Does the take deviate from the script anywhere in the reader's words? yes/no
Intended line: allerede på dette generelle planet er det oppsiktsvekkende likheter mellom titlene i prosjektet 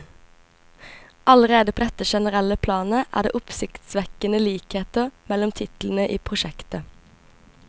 no